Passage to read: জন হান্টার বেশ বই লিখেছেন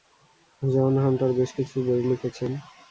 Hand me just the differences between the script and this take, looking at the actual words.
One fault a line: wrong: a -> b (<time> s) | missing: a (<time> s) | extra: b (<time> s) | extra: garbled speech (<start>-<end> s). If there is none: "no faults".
extra: কিছু (1.6 s)